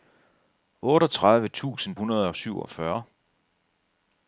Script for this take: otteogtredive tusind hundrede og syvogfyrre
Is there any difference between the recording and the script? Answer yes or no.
no